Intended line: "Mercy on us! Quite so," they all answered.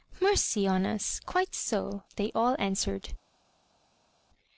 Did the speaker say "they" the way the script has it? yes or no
yes